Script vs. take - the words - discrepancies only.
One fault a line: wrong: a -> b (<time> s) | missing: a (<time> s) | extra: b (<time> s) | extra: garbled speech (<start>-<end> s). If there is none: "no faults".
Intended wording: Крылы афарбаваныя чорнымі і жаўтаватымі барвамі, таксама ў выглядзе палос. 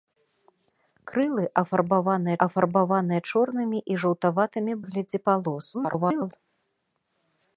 extra: афарбаваныя (2.5 s)
missing: барвамі таксама ў (4.7 s)
extra: garbled speech (5.7-6.3 s)